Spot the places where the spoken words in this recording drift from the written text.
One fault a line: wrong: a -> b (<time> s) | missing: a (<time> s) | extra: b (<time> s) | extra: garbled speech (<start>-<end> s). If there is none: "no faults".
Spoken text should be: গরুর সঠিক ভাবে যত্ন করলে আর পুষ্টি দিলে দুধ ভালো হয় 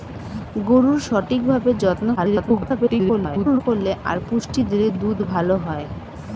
extra: garbled speech (2.2-3.6 s)